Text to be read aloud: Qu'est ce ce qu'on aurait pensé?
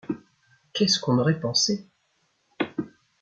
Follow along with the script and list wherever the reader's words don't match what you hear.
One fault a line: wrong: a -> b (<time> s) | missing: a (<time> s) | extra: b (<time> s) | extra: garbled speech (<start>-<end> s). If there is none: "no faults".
missing: ce (1.0 s)